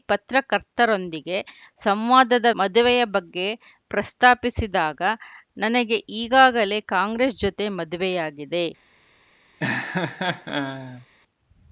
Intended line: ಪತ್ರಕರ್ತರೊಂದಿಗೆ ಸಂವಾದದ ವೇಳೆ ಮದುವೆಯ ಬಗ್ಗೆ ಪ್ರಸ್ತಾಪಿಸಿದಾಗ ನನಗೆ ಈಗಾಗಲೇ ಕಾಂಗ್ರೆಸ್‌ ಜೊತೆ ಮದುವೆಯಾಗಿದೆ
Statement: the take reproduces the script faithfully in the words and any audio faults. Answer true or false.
false